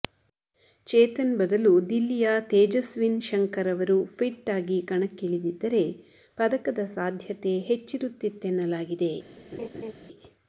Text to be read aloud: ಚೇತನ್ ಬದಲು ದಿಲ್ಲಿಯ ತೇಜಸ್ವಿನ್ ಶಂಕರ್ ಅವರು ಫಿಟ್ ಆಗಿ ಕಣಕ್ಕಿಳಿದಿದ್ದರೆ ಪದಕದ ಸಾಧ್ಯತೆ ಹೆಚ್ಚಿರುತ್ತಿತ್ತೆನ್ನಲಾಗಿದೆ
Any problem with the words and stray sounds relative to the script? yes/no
yes